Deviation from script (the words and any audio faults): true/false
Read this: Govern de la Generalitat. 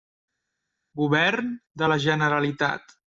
false